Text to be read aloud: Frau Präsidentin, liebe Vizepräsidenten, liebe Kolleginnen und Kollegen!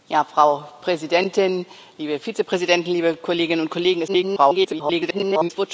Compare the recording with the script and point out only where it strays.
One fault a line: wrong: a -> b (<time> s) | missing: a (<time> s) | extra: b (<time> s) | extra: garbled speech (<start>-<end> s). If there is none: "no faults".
extra: garbled speech (4.1-5.5 s)